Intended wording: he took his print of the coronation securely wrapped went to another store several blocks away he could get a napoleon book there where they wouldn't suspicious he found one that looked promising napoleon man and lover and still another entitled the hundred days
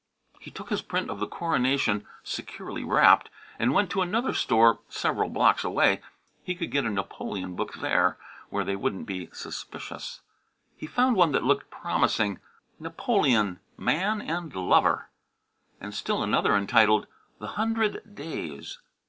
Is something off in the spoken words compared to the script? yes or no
yes